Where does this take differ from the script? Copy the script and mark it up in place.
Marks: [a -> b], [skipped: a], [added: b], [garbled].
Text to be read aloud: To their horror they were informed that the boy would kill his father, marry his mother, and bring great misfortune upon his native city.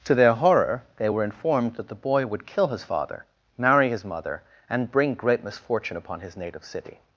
To their horror they were informed that the boy would kill his father, marry his mother, and bring great misfortune upon his native city.